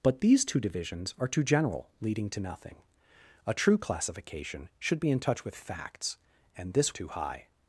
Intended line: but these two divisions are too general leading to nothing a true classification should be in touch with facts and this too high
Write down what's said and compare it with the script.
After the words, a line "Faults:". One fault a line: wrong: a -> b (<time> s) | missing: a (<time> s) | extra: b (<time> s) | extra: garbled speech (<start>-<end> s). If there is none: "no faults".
but these two divisions are too general leading to nothing a true classification should be in touch with facts and this too high
Faults:
no faults